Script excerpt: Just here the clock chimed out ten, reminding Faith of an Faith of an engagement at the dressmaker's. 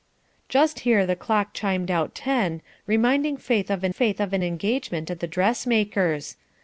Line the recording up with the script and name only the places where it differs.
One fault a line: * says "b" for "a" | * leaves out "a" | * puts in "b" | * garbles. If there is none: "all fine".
all fine